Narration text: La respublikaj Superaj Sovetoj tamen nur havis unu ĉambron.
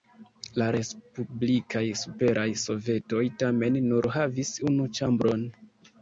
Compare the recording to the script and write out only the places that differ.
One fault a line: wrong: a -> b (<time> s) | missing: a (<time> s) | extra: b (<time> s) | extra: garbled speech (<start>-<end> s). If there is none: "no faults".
no faults